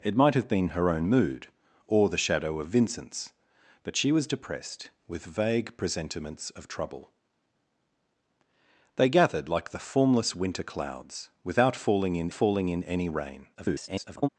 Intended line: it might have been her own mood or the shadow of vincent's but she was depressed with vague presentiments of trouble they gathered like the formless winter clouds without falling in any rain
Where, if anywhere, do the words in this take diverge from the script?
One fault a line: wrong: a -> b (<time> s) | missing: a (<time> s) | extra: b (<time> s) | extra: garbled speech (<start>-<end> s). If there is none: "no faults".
extra: falling in (12.3 s)
extra: garbled speech (13.5-14.3 s)